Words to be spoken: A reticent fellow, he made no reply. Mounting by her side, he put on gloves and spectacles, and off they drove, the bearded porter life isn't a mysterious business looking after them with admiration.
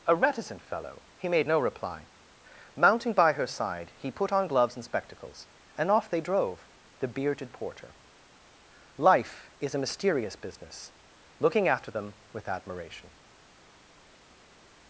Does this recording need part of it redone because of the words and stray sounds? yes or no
yes